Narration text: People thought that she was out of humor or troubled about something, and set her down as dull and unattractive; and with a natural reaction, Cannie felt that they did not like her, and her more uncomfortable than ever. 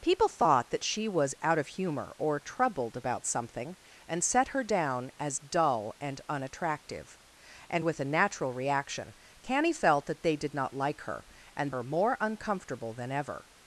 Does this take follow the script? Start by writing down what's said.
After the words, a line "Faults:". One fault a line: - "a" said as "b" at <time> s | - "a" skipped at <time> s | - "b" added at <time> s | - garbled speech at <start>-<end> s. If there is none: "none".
People thought that she was out of humor or troubled about something, and set her down as dull and unattractive; and with a natural reaction, Cannie felt that they did not like her, and her more uncomfortable than ever.
Faults:
none